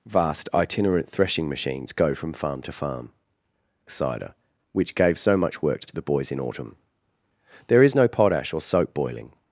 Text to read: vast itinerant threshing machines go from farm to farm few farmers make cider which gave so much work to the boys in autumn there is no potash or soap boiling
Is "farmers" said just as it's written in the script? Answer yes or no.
no